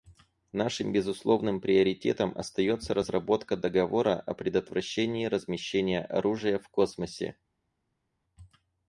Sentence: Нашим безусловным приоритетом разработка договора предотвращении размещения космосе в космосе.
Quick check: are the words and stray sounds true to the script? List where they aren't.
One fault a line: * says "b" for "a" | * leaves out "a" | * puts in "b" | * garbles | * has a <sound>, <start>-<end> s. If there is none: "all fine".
* puts in "остается"
* puts in "о"
* says "оружия" for "космосе"